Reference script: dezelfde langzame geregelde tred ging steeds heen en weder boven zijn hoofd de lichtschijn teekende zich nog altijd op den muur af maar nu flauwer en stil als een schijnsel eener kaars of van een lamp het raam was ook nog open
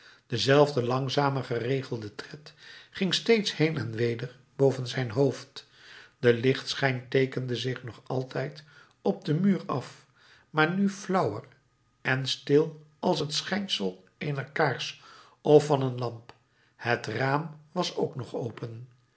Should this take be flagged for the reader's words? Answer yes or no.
yes